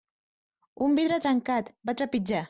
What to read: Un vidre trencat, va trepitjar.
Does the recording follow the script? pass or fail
pass